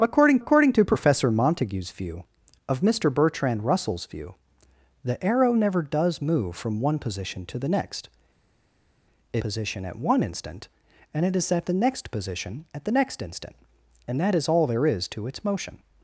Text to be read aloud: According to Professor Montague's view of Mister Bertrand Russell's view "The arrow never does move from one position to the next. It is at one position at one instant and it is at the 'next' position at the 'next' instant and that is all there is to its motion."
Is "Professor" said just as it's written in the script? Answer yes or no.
yes